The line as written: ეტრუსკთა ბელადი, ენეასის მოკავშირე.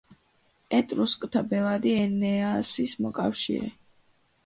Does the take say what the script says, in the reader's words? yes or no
yes